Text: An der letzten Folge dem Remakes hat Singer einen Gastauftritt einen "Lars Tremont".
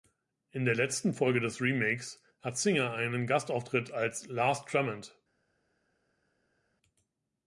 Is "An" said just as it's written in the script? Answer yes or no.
no